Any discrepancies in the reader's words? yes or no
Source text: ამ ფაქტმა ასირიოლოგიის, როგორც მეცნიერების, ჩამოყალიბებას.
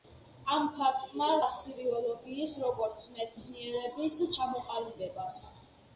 no